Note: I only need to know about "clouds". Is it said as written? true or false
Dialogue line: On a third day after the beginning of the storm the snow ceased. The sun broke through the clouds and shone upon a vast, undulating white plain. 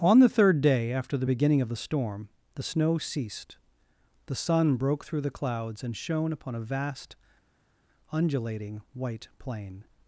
true